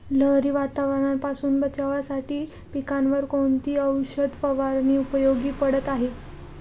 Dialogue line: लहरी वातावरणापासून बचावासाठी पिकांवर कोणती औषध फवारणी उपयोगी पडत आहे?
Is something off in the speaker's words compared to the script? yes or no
no